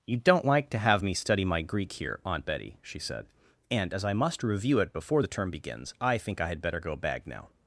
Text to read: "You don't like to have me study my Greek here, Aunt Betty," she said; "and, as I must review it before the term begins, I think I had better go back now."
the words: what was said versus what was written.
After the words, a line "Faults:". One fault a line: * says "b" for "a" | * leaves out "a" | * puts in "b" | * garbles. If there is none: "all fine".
"You don't like to have me study my Greek here, Aunt Betty," she said; "and, as I must review it before the term begins, I think I had better go bag now."
Faults:
* says "bag" for "back"